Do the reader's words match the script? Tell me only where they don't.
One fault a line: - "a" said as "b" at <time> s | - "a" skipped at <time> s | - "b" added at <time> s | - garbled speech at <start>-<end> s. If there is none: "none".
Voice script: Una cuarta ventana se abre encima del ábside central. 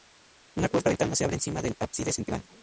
none